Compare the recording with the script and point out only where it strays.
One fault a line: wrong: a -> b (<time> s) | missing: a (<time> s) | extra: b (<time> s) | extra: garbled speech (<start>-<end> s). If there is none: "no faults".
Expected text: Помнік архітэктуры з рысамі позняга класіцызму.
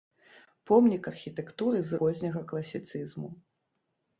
missing: рысамі (2.0 s)